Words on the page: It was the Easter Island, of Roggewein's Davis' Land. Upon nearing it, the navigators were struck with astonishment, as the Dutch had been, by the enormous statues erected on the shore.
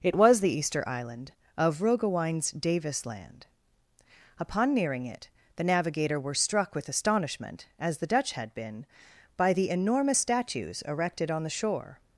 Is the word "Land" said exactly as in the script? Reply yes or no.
yes